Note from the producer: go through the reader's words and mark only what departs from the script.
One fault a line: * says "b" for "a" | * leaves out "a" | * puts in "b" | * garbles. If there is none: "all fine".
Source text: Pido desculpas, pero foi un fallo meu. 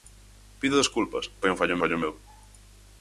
* leaves out "pero"
* puts in "fallo"